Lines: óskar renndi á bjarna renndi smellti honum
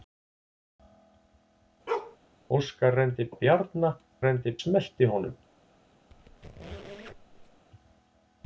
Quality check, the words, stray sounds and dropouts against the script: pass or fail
fail